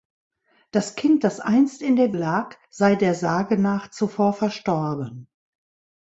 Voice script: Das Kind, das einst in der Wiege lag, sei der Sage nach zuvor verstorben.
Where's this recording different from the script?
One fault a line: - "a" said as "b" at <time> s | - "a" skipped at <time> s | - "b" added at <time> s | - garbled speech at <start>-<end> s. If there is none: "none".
- "Wiege" skipped at 2.1 s